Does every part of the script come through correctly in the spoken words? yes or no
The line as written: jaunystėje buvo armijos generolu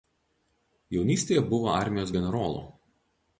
yes